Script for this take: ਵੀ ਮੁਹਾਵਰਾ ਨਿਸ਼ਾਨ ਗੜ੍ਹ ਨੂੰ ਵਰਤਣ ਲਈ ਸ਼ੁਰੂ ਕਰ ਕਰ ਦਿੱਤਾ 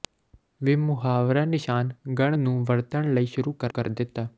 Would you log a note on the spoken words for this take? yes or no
no